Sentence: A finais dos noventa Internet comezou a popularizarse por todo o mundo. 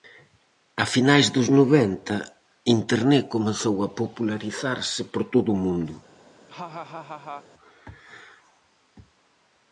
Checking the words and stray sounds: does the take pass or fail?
fail